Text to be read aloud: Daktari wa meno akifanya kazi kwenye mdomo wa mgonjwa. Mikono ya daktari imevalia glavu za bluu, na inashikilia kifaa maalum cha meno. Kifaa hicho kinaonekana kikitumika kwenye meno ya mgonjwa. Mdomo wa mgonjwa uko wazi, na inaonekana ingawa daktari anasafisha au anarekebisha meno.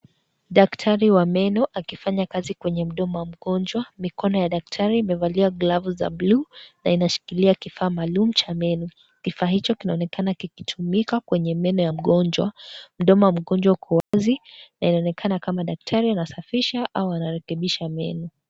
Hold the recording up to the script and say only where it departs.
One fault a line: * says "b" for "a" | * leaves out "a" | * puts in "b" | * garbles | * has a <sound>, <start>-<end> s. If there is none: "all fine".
* has a dropout, 14.0-14.1 s
* says "kama" for "ingawa"